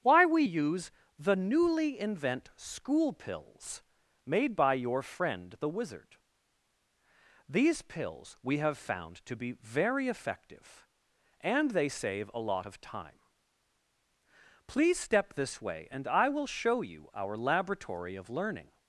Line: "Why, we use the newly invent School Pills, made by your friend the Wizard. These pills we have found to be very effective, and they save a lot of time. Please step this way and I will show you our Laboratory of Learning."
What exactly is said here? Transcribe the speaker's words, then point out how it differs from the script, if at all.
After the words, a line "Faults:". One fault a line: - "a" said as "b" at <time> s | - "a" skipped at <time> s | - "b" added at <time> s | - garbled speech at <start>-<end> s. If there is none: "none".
"Why, we use the newly invent School Pills, made by your friend the Wizard. These pills we have found to be very effective, and they save a lot of time. Please step this way and I will show you our Laboratory of Learning."
Faults:
none